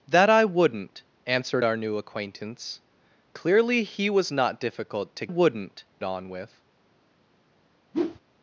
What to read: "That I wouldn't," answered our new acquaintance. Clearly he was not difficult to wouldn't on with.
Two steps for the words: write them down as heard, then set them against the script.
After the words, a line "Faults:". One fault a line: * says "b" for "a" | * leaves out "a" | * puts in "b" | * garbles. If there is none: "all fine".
"That I wouldn't," answered our new acquaintance. Clearly he was not difficult to wouldn't on with.
Faults:
all fine